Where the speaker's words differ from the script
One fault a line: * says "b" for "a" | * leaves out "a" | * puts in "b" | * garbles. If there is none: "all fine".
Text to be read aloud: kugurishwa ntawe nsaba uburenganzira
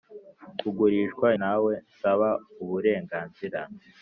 all fine